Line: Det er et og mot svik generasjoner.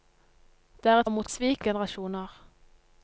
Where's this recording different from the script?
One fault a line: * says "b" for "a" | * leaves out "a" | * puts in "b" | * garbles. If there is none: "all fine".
all fine